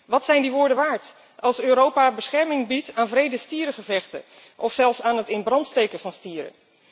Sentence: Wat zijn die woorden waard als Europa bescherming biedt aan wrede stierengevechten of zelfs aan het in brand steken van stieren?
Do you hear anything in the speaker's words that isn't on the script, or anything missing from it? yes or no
no